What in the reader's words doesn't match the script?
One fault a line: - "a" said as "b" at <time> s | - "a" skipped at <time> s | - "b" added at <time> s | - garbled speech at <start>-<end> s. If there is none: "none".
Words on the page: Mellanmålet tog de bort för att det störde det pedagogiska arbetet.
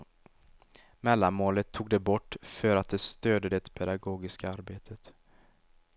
none